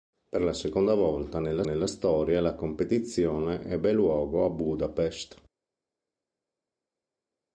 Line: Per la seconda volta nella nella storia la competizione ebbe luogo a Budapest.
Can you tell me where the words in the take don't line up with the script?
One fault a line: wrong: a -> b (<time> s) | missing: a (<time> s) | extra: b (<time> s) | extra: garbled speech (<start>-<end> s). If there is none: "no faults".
no faults